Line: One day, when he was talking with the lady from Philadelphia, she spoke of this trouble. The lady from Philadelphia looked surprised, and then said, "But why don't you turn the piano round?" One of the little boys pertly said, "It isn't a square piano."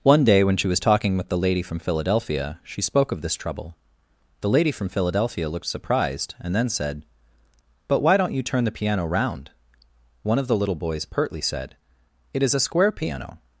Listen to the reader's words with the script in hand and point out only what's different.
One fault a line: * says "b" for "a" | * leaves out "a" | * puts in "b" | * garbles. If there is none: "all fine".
* says "she" for "he"
* says "is" for "isn't"